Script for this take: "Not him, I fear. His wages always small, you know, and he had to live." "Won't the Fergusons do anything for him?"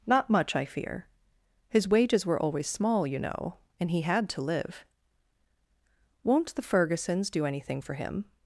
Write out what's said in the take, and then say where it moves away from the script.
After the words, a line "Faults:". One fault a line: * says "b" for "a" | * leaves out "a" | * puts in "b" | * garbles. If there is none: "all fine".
"Not much, I fear. His wages were always small, you know, and he had to live." "Won't the Fergusons do anything for him?"
Faults:
* says "much" for "him"
* puts in "were"